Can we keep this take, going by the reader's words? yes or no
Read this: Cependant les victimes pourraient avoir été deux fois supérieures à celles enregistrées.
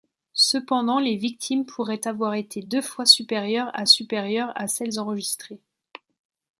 no